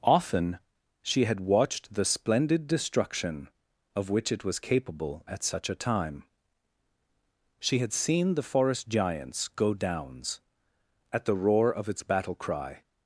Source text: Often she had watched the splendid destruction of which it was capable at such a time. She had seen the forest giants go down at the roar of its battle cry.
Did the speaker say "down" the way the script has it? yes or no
no